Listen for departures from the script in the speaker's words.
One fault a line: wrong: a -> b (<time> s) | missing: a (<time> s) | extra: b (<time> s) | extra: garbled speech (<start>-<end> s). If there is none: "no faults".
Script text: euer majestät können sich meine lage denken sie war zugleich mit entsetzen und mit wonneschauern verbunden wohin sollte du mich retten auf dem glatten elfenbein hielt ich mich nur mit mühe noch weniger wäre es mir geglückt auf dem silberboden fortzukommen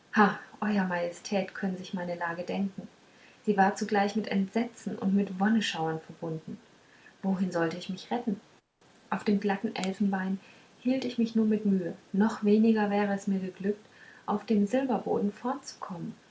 wrong: du -> ich (7.8 s)